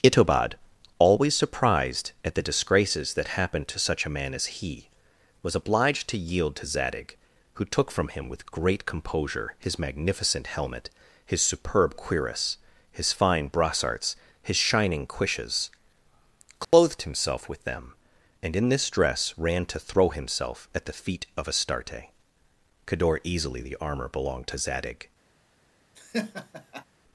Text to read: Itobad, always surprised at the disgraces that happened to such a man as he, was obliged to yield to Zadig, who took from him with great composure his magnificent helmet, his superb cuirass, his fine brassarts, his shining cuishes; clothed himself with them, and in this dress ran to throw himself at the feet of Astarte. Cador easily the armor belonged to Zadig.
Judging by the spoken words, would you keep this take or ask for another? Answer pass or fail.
pass